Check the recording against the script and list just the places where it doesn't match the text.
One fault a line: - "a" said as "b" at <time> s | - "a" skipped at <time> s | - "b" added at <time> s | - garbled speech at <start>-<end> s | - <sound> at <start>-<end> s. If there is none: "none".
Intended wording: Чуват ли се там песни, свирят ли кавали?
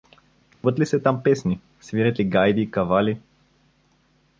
- dropout at 0.5-0.6 s
- "гайди" added at 2.2 s